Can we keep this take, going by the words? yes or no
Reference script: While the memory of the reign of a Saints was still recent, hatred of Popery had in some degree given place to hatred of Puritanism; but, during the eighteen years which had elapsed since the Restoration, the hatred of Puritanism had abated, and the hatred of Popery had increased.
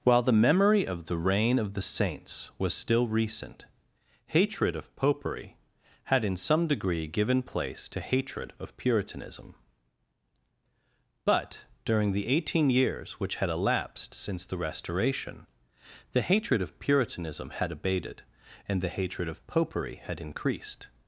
no